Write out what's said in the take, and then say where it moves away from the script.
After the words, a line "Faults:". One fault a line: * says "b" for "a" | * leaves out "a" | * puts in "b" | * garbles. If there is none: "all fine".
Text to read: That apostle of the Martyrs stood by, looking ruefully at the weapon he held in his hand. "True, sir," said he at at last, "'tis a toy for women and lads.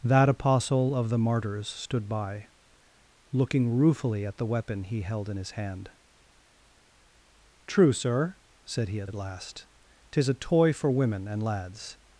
That apostle of the Martyrs stood by, looking ruefully at the weapon he held in his hand. "True, sir," said he at at last, "'tis a toy for women and lads.
Faults:
all fine